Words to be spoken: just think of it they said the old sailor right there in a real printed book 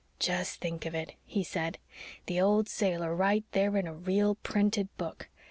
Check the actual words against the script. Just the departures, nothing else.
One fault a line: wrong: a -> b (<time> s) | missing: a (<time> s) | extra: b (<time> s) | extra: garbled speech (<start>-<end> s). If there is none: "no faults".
wrong: they -> he (1.2 s)